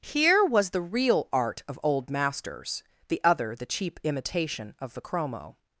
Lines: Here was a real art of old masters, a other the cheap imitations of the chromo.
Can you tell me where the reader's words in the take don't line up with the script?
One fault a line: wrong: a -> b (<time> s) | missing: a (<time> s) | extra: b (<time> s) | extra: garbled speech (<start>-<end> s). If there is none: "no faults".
wrong: a -> the (0.7 s)
wrong: a -> the (3.1 s)
wrong: imitations -> imitation (4.0 s)